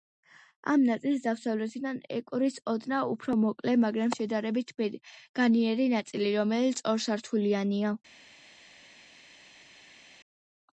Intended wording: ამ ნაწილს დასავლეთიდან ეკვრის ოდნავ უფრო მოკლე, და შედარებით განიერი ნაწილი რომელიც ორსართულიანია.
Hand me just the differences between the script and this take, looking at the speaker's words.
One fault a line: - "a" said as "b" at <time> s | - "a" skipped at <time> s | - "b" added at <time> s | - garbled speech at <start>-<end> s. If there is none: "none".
- "და" said as "მაგრამ" at 3.9 s